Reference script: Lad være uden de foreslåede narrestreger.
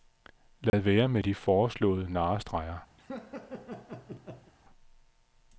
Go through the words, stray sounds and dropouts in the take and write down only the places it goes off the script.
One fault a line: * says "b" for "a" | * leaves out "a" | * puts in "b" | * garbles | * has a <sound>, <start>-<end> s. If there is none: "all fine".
* has a dropout, 0.7-0.7 s
* says "med" for "uden"
* has a laugh, 3.0-4.5 s